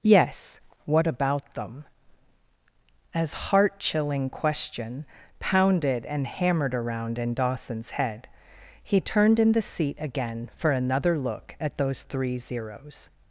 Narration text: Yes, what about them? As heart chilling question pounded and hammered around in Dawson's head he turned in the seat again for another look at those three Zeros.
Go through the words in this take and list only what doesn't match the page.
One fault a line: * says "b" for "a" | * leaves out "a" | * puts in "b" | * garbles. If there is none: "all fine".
all fine